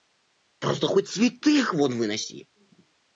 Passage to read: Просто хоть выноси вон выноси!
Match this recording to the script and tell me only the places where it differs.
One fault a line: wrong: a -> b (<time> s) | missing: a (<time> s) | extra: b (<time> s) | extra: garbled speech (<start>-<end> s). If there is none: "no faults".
wrong: выноси -> святых (1.1 s)